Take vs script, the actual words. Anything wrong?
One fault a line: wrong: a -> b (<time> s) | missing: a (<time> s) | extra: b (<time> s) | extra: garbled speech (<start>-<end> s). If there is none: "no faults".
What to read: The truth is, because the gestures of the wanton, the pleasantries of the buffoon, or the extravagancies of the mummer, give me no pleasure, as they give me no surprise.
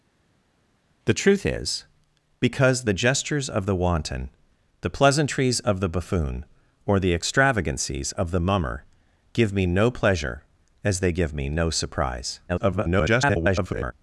extra: garbled speech (12.5-13.9 s)